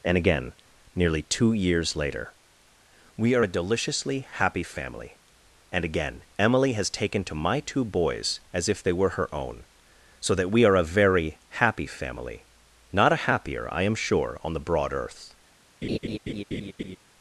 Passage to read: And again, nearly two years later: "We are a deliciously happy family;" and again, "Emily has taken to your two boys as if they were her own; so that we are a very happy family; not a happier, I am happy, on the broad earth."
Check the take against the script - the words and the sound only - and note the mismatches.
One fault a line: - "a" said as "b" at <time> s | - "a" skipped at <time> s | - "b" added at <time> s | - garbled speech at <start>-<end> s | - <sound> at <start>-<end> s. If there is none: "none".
- "your" said as "my" at 7.3 s
- "happy" said as "sure" at 14.0 s
- laugh at 15.8-17.0 s